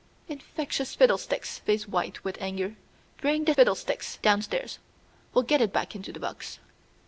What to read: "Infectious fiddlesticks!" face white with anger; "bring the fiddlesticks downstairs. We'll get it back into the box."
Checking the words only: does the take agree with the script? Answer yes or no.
yes